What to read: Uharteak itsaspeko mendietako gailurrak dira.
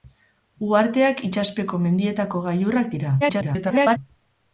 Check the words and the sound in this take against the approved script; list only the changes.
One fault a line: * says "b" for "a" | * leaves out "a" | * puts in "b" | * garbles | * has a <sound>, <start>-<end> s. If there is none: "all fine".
* garbles